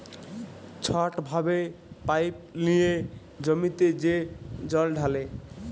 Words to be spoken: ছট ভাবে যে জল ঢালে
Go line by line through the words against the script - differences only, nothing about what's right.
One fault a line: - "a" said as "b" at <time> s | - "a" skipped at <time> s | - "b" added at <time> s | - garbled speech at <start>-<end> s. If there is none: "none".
- "পাইপ লিঁয়ে জমিতে" added at 2.1 s